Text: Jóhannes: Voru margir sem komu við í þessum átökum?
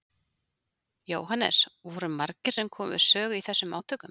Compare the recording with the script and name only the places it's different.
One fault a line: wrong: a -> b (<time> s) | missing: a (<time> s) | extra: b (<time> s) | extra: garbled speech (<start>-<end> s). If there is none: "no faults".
extra: sögu (3.1 s)